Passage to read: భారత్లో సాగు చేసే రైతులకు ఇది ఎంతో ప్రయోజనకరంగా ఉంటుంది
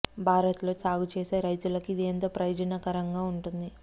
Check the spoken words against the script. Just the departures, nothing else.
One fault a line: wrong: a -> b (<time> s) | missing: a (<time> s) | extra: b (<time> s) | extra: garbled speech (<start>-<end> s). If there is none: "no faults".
no faults